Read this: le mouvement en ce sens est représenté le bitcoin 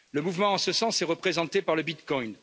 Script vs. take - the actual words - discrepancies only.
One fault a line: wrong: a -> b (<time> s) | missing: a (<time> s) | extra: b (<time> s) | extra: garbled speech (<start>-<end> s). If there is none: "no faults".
extra: par (1.6 s)